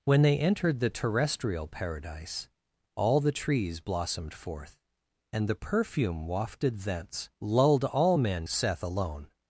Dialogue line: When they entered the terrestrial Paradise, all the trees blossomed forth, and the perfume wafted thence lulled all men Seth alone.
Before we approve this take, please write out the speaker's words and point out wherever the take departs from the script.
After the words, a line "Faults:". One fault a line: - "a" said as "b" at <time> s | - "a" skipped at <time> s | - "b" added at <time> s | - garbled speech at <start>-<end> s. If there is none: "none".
When they entered the terrestrial Paradise, all the trees blossomed forth, and the perfume wafted thence lulled all men Seth alone.
Faults:
none